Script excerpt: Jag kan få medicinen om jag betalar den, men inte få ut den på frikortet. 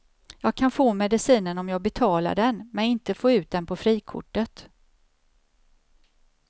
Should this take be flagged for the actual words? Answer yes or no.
no